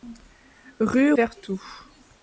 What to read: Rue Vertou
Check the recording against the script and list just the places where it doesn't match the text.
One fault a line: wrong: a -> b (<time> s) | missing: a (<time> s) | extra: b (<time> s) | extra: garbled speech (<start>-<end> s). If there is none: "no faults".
no faults